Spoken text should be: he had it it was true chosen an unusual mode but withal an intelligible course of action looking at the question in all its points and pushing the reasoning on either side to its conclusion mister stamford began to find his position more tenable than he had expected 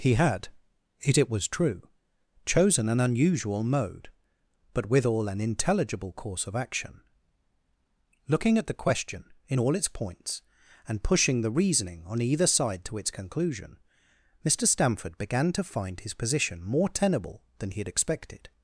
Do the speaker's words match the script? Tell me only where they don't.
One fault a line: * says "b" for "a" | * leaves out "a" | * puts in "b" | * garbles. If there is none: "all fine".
all fine